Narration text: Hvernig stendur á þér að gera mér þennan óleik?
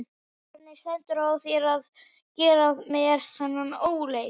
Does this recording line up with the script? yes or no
yes